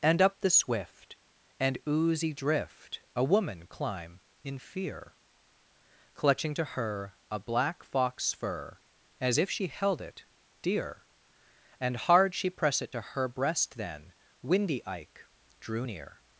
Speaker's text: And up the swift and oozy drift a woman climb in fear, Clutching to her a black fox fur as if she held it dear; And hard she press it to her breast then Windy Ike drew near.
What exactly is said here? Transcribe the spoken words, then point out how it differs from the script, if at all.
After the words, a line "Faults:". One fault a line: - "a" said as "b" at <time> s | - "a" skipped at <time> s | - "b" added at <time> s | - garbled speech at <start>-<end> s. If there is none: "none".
And up the swift and oozy drift a woman climb in fear, Clutching to her a black fox fur as if she held it dear; And hard she press it to her breast then Windy Ike drew near.
Faults:
none